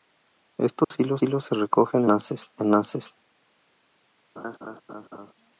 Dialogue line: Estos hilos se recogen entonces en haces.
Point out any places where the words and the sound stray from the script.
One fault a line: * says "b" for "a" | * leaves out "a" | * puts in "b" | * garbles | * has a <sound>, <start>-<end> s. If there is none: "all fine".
* has a dropout, 0.8-0.9 s
* puts in "hilos"
* says "haces" for "entonces"
* has a laugh, 4.4-5.3 s